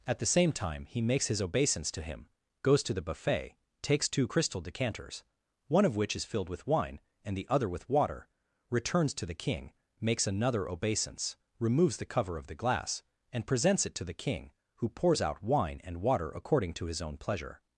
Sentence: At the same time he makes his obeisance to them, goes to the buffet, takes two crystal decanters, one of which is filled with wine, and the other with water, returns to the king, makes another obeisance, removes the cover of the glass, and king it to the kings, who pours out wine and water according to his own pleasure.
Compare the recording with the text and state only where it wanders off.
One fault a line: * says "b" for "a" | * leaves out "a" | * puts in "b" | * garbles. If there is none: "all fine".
* says "him" for "them"
* says "presents" for "king"
* says "king" for "kings"